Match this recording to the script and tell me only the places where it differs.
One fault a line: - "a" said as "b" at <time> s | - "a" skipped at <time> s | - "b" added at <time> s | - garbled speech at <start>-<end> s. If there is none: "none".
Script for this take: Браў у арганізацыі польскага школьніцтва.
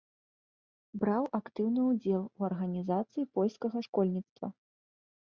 - "актыўны ўдзел" added at 1.4 s